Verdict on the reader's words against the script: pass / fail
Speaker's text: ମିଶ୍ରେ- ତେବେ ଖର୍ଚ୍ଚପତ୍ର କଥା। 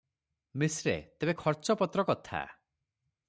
pass